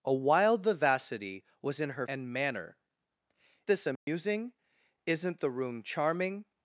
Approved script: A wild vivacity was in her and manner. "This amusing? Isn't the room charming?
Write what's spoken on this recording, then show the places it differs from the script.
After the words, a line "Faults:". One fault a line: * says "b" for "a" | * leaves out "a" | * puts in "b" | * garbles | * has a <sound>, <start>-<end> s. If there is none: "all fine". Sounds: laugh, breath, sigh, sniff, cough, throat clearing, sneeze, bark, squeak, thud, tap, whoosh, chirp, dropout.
A wild vivacity was in her and manner. "This amusing? Isn't the room charming?
Faults:
* has a dropout, 4.0-4.1 s